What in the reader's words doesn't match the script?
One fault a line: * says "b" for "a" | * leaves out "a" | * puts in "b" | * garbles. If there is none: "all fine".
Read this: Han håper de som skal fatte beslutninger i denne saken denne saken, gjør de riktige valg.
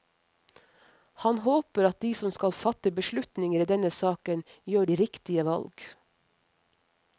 * puts in "at"
* leaves out "denne saken"